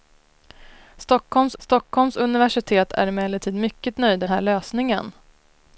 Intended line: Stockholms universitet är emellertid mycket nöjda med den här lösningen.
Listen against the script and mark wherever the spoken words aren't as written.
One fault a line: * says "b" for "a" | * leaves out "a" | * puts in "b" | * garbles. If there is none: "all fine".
* puts in "stockholms"
* leaves out "med den"